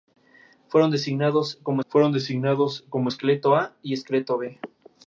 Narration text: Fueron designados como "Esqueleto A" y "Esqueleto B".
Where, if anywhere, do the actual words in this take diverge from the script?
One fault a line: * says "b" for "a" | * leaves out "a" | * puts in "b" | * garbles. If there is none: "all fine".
* puts in "fueron designados como"